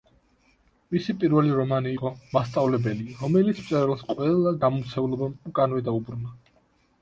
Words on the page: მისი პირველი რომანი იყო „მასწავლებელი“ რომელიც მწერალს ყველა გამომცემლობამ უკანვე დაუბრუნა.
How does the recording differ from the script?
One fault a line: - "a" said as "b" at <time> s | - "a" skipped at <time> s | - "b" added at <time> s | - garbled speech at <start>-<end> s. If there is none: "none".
none